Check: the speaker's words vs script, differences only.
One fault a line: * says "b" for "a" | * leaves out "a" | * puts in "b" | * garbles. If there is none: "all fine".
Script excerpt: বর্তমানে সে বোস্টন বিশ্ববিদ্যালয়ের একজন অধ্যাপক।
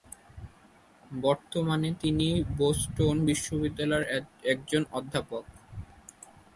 * says "তিনি" for "সে"